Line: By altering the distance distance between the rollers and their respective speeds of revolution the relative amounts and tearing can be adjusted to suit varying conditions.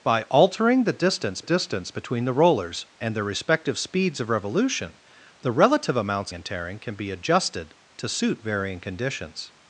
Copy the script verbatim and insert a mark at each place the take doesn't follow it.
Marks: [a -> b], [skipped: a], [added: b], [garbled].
By altering the distance distance between the rollers and their respective speeds of revolution the relative amounts and tearing can be adjusted to suit varying conditions.